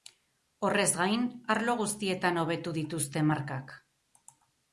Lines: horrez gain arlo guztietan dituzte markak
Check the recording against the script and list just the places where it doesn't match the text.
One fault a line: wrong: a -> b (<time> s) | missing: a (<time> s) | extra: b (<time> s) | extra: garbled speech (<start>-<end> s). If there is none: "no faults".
extra: hobetu (2.4 s)